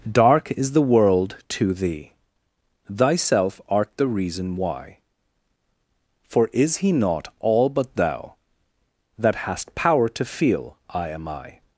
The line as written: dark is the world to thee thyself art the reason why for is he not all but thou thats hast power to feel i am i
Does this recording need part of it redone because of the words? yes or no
yes